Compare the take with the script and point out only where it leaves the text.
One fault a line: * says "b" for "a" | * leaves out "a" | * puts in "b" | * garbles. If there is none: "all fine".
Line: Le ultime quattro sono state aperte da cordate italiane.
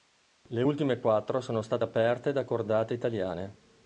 all fine